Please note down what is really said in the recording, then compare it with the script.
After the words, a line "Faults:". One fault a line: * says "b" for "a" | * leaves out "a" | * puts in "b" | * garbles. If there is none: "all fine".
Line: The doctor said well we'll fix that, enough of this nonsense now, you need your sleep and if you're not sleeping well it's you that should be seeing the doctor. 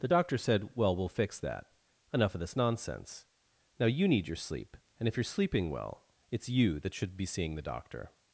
The doctor said well we'll fix that, enough of this nonsense now, you need your sleep and if you're sleeping well it's you that should be seeing the doctor.
Faults:
* leaves out "not"